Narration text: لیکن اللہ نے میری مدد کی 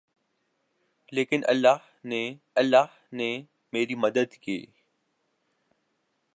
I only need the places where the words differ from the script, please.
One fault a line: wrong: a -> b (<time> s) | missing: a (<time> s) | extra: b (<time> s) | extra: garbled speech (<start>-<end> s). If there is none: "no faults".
extra: اللہ نے (2.6 s)